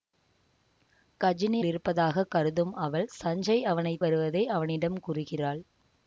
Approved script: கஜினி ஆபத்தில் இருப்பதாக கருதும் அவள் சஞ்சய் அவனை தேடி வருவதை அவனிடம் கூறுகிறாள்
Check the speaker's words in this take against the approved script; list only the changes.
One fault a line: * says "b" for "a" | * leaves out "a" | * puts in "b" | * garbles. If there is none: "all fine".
* leaves out "ஆபத்தில்"
* leaves out "தேடி"